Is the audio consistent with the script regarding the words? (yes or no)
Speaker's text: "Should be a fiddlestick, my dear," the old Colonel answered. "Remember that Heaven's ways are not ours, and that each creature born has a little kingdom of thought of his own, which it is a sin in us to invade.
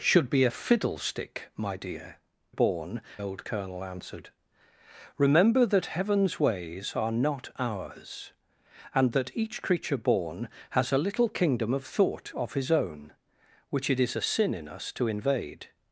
no